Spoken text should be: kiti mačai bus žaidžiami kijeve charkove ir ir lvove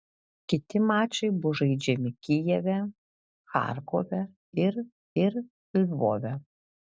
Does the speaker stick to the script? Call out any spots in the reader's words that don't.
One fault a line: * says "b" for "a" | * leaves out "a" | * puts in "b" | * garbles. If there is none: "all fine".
all fine